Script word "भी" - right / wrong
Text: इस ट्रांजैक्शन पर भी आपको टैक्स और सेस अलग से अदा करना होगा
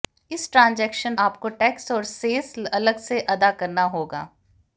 wrong